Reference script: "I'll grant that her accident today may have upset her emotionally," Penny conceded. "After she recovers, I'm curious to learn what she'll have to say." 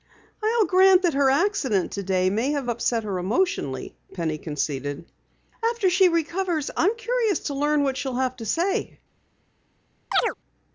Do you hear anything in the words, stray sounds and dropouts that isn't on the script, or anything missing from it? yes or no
yes